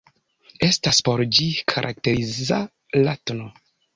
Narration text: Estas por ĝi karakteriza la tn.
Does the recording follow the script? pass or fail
pass